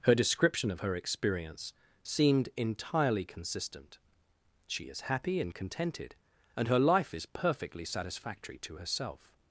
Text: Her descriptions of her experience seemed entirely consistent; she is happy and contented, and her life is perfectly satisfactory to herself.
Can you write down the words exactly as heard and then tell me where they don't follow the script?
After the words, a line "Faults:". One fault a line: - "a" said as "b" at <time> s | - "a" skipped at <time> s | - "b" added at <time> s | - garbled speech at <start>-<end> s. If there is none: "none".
Her description of her experience seemed entirely consistent; she is happy and contented, and her life is perfectly satisfactory to herself.
Faults:
- "descriptions" said as "description" at 0.1 s